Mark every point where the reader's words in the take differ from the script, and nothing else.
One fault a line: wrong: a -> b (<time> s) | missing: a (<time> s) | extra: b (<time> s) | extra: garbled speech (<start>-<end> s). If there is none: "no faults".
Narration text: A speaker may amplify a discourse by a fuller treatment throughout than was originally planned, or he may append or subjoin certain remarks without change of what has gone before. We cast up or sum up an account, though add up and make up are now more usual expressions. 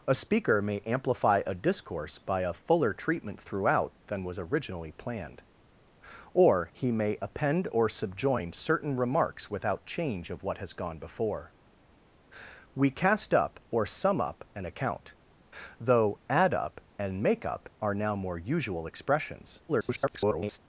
extra: garbled speech (19.7-20.6 s)